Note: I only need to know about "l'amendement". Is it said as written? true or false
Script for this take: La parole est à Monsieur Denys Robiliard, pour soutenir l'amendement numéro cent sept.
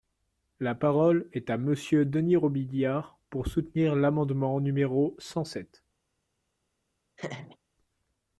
true